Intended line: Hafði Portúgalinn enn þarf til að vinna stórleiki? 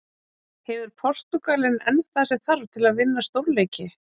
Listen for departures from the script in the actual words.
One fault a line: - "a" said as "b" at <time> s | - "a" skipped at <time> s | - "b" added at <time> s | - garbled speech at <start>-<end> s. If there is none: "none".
- "Hafði" said as "Hefur" at 0.7 s
- "það sem" added at 2.2 s